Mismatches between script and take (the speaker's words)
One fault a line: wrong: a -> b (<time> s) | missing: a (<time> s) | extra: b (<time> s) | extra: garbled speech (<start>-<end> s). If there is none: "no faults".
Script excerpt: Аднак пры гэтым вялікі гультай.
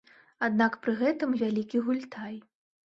no faults